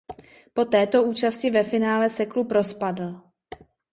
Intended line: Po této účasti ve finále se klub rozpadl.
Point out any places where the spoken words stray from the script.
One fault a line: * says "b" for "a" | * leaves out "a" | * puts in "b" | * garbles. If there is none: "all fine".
all fine